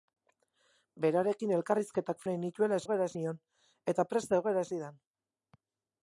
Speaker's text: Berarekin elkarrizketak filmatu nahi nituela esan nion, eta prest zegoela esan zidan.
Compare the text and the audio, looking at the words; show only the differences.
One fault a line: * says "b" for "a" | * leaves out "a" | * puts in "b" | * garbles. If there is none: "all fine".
* leaves out "filmatu"
* says "zegoela" for "esan"
* leaves out "esan"